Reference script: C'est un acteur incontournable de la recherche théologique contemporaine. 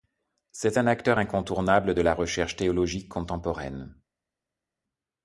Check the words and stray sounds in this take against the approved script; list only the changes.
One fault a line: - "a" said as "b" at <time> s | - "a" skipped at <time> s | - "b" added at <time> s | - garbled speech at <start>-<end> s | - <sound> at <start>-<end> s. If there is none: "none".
none